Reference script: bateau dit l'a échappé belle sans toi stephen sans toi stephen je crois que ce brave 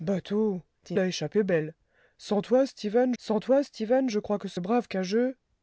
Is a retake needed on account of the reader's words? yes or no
no